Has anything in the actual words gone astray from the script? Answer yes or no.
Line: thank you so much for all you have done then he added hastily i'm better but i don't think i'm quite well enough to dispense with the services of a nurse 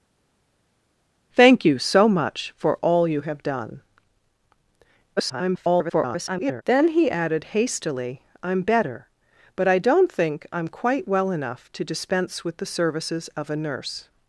yes